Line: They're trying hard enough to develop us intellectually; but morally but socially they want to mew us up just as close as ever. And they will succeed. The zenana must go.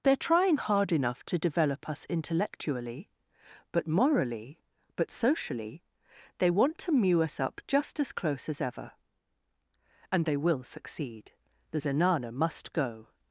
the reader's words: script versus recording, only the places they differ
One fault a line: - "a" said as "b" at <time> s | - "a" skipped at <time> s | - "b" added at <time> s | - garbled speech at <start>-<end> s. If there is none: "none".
none